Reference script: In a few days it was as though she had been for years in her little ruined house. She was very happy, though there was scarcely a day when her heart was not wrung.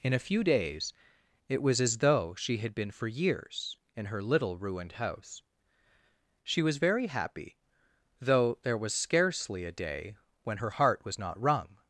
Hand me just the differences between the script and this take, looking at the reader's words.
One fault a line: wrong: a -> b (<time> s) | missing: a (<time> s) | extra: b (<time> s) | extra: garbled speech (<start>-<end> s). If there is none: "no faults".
no faults